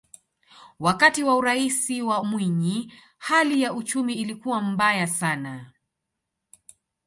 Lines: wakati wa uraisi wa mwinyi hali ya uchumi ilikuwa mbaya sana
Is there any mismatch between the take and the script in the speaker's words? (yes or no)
no